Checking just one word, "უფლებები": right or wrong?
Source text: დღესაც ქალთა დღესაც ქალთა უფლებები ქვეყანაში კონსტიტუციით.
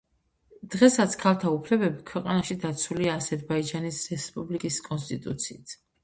wrong